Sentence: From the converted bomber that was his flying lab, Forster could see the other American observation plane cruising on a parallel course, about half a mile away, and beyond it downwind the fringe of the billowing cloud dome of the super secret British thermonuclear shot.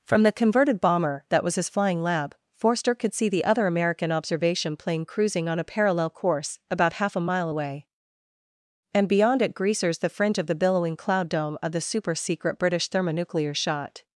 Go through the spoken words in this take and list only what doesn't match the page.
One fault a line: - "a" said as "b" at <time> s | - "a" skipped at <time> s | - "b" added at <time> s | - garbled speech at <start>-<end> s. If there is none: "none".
- "downwind" said as "greasers" at 9.5 s